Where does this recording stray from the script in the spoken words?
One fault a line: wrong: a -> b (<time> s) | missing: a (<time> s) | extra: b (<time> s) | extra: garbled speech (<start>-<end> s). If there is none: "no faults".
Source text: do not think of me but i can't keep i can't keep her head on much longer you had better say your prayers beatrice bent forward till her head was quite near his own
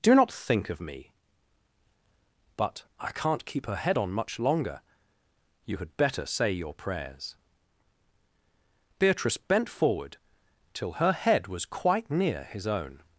missing: i can't keep (3.6 s)